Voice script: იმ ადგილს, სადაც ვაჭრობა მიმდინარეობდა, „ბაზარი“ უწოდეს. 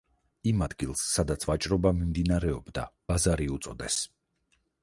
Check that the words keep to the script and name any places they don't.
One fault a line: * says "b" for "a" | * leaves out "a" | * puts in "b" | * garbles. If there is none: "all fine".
all fine